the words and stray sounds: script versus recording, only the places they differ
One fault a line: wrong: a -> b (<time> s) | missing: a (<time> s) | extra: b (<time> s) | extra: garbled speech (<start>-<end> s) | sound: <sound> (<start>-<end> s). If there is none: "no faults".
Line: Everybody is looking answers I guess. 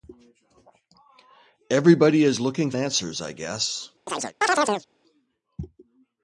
sound: chirp (4.1-4.9 s)